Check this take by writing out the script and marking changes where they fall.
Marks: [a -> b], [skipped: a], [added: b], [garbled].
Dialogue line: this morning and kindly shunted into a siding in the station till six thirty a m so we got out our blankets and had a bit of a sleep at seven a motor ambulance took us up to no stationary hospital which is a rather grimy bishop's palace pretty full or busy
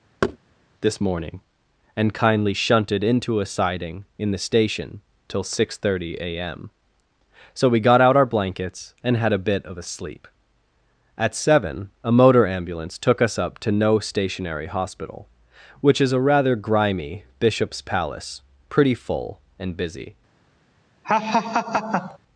this morning and kindly shunted into a siding in the station till six thirty a m so we got out our blankets and had a bit of a sleep at seven a motor ambulance took us up to no stationary hospital which is a rather grimy bishop's palace pretty full [or -> and] busy